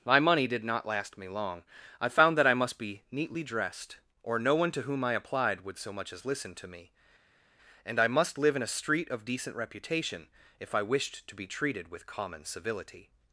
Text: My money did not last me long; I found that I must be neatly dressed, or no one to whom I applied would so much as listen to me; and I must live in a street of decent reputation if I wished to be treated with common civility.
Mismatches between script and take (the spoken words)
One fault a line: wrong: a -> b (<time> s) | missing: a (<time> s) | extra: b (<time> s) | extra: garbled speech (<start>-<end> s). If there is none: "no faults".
no faults